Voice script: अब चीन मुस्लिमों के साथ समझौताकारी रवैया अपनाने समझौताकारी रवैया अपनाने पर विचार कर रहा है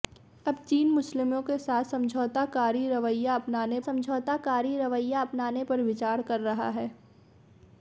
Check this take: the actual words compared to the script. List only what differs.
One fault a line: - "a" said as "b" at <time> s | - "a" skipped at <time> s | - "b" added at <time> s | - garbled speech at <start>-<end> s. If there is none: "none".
none